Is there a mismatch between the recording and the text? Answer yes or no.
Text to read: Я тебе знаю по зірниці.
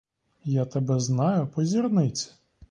no